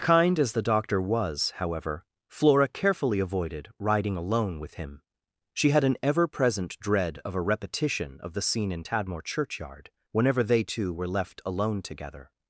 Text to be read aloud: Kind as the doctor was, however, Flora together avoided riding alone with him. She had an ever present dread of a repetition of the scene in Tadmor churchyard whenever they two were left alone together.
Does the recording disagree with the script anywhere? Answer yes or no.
yes